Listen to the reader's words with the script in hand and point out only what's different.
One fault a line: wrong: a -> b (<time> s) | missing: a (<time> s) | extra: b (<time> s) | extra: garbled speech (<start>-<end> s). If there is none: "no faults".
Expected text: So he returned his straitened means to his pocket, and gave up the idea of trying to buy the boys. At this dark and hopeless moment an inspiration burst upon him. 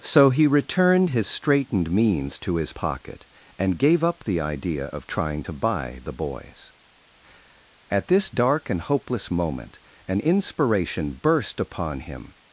no faults